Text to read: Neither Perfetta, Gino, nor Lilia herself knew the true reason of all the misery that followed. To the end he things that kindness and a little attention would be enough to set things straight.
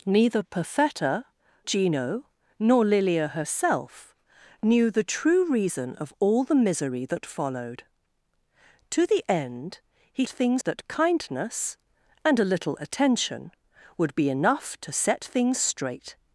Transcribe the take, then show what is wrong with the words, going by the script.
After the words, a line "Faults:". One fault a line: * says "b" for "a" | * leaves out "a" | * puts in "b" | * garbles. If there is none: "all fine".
Neither Perfetta, Gino, nor Lilia herself knew the true reason of all the misery that followed. To the end he things that kindness and a little attention would be enough to set things straight.
Faults:
all fine